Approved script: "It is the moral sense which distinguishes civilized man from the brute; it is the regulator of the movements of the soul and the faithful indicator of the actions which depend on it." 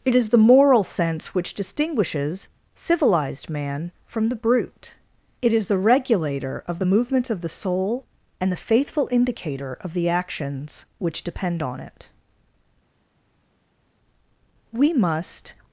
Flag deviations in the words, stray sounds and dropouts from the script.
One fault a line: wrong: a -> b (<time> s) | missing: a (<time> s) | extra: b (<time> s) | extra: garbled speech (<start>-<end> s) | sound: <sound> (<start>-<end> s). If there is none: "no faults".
extra: We must (14.7 s)